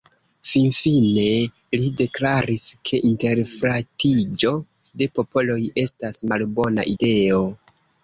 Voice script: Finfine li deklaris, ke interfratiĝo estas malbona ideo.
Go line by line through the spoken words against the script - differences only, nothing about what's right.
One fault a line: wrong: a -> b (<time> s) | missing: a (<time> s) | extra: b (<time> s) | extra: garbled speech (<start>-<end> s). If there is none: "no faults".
extra: de popoloj (5.0 s)